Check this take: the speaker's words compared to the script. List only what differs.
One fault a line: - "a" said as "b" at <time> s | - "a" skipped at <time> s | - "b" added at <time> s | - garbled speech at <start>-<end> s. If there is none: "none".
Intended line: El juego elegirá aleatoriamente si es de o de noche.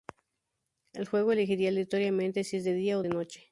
- "día" added at 2.7 s